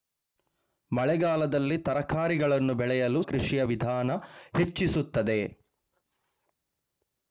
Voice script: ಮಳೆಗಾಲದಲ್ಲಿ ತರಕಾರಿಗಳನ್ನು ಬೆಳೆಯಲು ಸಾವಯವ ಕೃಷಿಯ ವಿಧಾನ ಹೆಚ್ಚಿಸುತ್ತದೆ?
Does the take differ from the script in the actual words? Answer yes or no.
yes